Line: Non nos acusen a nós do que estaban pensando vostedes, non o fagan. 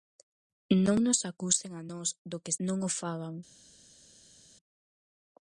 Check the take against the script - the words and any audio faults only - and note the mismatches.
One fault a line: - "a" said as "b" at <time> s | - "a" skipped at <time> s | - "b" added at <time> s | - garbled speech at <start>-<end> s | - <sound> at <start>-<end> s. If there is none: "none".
- "estaban pensando vostedes" skipped at 2.5 s